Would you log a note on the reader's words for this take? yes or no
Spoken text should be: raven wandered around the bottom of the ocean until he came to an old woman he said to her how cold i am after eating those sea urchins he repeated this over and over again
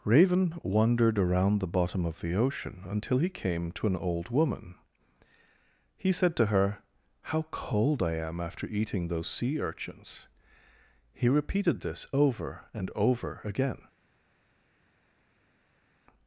no